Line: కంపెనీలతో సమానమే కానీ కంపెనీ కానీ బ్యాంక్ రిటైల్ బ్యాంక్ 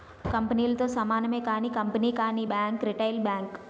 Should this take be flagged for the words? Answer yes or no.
no